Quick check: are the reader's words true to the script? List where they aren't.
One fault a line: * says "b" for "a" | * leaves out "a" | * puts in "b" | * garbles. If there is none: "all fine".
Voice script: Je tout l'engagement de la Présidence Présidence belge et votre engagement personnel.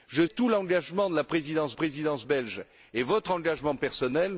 all fine